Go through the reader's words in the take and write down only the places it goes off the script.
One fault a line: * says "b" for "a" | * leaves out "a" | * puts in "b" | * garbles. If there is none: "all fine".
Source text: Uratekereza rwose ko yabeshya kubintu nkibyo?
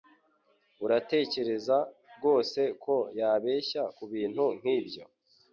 all fine